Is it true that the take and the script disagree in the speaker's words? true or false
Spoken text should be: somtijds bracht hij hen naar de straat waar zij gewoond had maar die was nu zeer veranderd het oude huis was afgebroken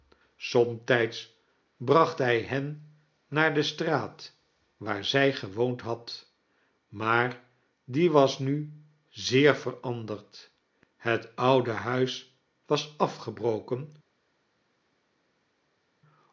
false